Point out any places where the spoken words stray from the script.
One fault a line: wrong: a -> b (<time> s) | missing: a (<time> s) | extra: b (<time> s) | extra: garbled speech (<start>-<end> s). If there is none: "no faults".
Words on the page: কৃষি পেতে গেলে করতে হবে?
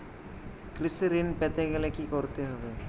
extra: ঋণ (1.1 s)
extra: কি (1.8 s)